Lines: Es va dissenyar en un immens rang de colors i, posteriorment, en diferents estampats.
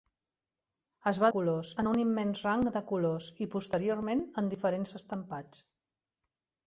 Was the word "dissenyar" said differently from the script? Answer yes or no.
yes